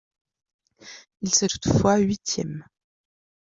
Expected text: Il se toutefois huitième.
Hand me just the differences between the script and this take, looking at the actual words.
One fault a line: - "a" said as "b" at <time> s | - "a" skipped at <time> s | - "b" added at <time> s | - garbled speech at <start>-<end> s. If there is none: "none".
none